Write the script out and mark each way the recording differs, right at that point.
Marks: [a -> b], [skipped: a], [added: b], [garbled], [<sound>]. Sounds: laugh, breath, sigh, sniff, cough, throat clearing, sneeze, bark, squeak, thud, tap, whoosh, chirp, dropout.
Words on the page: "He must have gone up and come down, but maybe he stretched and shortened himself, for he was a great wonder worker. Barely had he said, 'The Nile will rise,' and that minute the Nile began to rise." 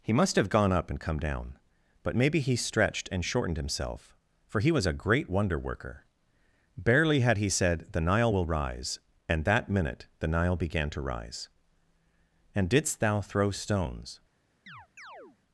"He must have gone up and come down, but maybe he stretched and shortened himself, for he was a great wonder worker. Barely had he said, 'The Nile will rise,' and that minute the Nile began to rise." [added: And didst thou throw stones] [chirp]